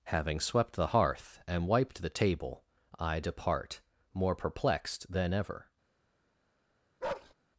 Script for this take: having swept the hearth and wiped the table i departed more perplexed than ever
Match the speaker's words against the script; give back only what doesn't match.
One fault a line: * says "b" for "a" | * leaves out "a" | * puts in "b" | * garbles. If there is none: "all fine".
* says "depart" for "departed"